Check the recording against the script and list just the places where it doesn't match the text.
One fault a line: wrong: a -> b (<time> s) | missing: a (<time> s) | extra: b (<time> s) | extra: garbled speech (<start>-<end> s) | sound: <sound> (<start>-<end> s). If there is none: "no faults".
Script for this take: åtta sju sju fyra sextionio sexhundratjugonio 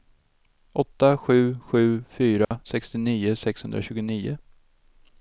sound: dropout (2.4-2.5 s)